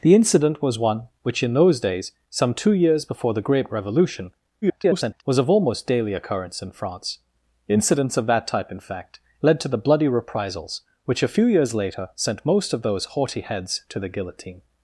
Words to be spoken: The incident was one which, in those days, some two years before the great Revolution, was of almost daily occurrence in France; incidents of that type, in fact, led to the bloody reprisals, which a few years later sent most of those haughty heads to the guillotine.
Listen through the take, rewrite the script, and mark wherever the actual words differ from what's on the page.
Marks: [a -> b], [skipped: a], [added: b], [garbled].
The incident was one which, in those days, some two years before the great Revolution, [garbled] was of almost daily occurrence in France; incidents of that type, in fact, led to the bloody reprisals, which a few years later sent most of those haughty heads to the guillotine.